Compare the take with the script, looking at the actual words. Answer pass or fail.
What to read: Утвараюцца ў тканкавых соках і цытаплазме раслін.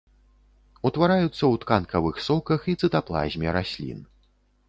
pass